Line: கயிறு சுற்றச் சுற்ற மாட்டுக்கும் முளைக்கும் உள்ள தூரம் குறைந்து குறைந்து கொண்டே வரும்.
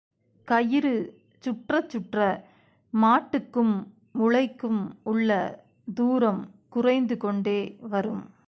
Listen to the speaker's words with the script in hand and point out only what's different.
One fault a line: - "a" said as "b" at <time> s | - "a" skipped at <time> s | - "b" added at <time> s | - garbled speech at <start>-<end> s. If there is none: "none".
- "குறைந்து" skipped at 7.2 s